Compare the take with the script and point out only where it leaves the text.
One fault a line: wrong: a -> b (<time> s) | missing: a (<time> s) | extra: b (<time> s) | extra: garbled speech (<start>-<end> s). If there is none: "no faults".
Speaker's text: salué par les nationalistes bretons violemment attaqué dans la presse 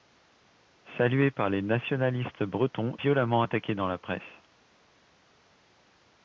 no faults